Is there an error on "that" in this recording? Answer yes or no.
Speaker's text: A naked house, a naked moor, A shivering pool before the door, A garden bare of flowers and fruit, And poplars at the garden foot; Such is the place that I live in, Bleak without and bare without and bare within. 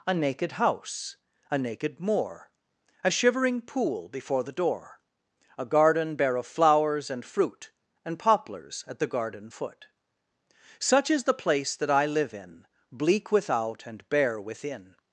no